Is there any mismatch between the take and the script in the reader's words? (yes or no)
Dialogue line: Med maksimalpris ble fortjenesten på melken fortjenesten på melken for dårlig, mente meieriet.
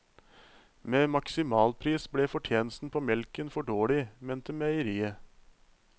yes